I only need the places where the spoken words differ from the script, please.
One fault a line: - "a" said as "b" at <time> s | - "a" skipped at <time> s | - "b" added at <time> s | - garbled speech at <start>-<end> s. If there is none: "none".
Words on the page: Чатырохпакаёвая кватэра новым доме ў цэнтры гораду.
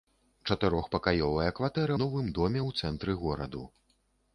none